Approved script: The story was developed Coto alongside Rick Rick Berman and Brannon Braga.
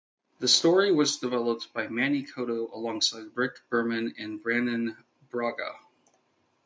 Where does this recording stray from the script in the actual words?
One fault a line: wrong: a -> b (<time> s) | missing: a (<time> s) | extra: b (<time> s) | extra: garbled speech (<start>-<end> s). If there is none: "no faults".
extra: by Manny (1.7 s)
missing: Rick (3.7 s)